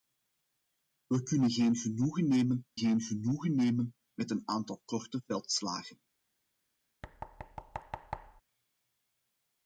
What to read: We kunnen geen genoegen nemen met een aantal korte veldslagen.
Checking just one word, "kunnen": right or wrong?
right